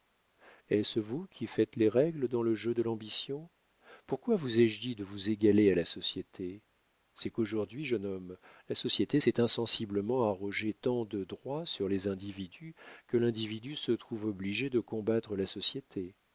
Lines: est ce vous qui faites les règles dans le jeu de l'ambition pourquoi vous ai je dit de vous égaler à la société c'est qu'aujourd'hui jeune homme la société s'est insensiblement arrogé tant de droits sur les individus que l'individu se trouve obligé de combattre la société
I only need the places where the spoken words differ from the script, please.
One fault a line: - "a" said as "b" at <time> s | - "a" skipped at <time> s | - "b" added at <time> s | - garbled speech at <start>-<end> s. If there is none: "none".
none